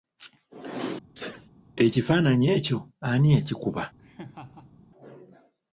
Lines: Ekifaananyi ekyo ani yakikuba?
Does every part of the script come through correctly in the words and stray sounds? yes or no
no